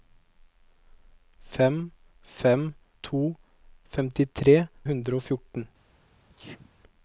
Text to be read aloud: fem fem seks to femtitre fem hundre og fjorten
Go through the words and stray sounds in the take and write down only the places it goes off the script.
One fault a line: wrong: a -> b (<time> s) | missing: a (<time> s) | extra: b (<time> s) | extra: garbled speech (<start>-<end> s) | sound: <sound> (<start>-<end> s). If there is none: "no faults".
missing: seks (2.7 s)
missing: fem (4.6 s)
sound: sneeze (6.3-6.7 s)